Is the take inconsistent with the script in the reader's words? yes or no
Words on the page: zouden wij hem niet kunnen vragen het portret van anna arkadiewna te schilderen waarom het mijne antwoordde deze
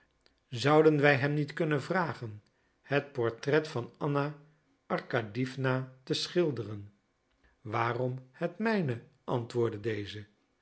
no